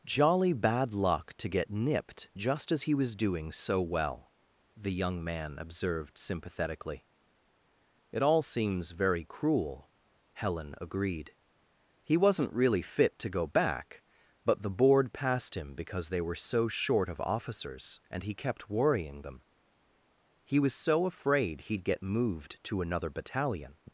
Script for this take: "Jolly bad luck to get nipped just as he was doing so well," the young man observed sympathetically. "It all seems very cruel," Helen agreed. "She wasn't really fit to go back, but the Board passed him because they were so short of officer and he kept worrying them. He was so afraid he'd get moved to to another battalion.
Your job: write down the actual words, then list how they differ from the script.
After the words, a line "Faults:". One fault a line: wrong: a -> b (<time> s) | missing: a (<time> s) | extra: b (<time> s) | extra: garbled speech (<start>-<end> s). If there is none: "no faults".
"Jolly bad luck to get nipped just as he was doing so well," the young man observed sympathetically. "It all seems very cruel," Helen agreed. "He wasn't really fit to go back, but the Board passed him because they were so short of officers and he kept worrying them. He was so afraid he'd get moved to another battalion.
Faults:
wrong: She -> He (12.0 s)
wrong: officer -> officers (17.2 s)
missing: to (22.8 s)